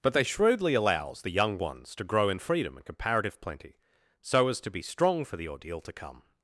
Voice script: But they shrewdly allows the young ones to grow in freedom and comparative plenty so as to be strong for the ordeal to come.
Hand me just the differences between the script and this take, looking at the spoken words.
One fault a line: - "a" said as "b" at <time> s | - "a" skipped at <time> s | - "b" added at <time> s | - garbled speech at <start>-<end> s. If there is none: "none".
none